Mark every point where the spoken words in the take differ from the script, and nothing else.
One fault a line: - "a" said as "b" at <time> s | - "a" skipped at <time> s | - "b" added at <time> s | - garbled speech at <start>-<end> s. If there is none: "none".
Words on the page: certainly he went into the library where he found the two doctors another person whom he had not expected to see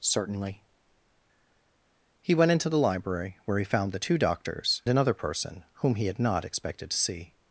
none